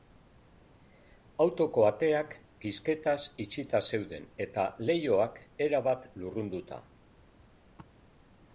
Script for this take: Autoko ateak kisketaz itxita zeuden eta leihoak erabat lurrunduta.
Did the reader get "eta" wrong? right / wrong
right